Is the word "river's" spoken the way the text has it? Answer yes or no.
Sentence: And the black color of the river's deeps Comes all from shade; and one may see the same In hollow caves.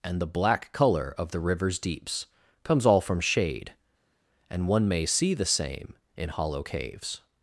yes